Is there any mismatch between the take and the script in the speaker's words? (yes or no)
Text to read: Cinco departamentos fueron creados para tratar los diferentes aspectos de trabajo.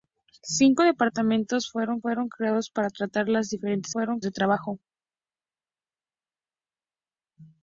yes